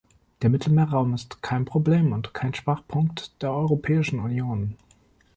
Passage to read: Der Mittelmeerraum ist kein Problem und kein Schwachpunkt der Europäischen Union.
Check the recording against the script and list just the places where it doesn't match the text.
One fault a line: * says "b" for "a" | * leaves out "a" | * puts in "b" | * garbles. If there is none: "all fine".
all fine